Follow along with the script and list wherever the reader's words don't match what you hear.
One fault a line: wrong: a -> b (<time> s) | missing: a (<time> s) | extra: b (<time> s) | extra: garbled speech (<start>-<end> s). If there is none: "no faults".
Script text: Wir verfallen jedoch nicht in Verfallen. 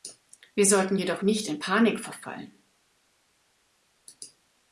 wrong: verfallen -> sollten (0.7 s)
extra: Panik (1.6 s)